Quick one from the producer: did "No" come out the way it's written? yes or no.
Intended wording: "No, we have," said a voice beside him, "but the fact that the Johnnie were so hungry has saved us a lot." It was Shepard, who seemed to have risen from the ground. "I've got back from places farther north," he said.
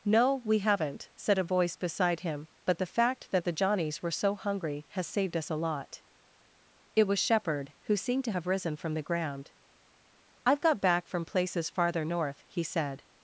yes